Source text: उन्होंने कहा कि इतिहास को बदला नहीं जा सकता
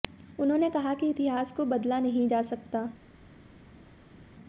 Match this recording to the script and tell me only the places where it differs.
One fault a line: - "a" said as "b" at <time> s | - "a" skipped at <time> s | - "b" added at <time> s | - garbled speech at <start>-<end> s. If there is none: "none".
none